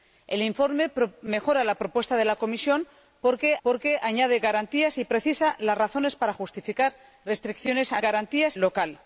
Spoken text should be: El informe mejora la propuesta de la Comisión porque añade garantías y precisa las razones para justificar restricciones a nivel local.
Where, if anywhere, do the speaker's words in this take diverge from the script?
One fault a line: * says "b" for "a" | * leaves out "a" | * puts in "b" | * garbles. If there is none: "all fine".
* puts in "porque"
* says "garantías" for "nivel"